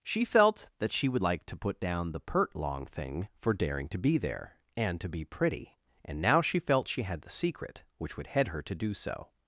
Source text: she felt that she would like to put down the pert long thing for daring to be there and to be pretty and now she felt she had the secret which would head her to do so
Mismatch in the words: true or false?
false